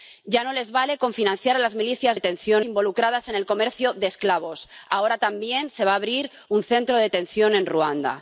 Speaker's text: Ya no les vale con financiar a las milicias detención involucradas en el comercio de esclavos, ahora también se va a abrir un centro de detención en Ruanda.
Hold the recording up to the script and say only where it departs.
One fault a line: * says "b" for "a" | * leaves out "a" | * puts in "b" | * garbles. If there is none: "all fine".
all fine